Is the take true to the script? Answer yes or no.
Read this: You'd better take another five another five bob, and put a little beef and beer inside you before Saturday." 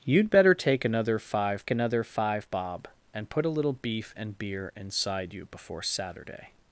yes